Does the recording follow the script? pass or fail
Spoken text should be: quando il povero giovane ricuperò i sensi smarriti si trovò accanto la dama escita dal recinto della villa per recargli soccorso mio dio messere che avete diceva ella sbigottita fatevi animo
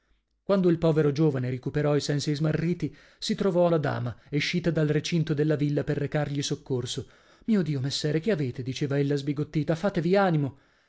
fail